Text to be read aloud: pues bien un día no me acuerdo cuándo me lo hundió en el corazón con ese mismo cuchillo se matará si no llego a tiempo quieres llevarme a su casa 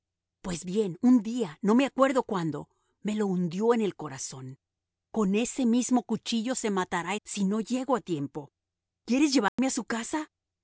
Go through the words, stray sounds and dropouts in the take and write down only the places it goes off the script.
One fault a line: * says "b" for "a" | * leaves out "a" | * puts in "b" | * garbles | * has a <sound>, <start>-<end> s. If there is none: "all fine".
* has a dropout, 9.5-9.6 s